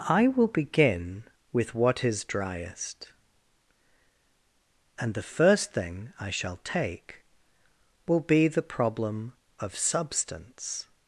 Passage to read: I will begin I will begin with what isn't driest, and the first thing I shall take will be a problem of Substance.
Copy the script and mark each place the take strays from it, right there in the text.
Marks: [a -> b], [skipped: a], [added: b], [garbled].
I will begin [skipped: I will begin] with what [isn't -> is] driest, and the first thing I shall take will be [a -> the] problem of Substance.